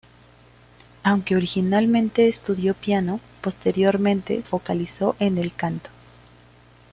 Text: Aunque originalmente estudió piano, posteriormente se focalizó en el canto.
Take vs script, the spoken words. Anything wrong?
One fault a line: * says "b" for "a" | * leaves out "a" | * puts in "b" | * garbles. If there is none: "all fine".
* leaves out "se"